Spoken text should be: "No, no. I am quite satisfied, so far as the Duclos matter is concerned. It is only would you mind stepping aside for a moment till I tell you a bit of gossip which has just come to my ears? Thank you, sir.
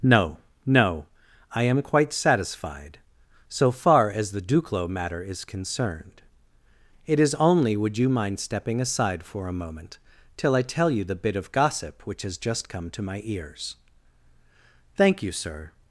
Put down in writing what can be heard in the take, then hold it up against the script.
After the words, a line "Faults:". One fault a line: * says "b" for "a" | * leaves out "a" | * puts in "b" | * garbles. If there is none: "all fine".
"No, no. I am quite satisfied, so far as the Duclos matter is concerned. It is only would you mind stepping aside for a moment till I tell you the bit of gossip which has just come to my ears? Thank you, sir.
Faults:
* says "the" for "a"